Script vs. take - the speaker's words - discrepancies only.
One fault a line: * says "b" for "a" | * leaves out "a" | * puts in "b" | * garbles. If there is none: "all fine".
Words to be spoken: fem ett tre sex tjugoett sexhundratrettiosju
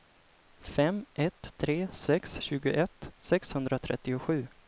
all fine